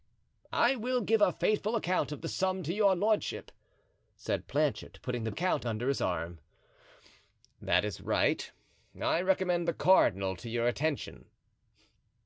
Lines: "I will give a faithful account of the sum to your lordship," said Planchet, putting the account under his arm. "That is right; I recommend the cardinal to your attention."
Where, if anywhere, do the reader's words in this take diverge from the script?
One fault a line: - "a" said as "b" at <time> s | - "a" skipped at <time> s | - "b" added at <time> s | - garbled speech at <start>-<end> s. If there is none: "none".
none